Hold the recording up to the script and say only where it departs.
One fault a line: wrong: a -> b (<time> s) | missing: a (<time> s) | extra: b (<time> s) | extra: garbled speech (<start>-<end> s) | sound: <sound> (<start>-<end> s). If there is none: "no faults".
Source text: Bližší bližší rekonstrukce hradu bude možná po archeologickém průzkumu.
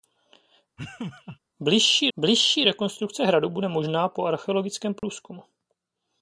sound: laugh (0.8-1.4 s)
sound: dropout (5.0-5.0 s)